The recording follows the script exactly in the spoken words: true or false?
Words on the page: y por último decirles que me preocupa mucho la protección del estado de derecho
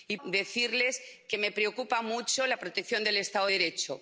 false